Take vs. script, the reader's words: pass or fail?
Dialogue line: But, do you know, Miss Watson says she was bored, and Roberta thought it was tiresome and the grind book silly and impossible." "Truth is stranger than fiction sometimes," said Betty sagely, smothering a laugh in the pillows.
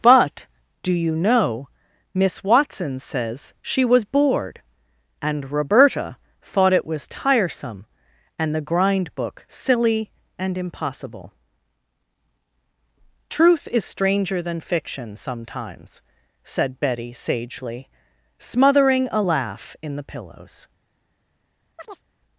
pass